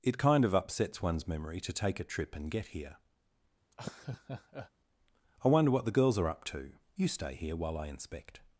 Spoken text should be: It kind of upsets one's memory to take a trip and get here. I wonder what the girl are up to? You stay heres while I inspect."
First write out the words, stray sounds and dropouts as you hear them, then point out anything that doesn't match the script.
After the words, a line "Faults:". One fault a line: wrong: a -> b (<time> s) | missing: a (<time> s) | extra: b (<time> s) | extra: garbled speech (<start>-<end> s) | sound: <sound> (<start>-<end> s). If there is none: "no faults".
It kind of upsets one's memory to take a trip and get here. I wonder what the girls are up to? You stay here while I inspect."
Faults:
sound: laugh (3.7-4.7 s)
wrong: girl -> girls (6.0 s)
wrong: heres -> here (7.3 s)